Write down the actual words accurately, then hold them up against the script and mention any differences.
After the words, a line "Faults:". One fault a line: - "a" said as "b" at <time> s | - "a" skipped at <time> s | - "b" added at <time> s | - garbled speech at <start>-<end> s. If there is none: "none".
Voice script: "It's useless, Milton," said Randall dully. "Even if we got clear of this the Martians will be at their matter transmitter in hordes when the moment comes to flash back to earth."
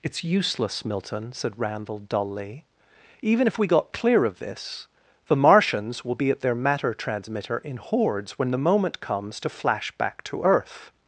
"It's useless, Milton," said Randall dully. "Even if we got clear of this the Martians will be at their matter transmitter in hordes when the moment comes to flash back to earth."
Faults:
none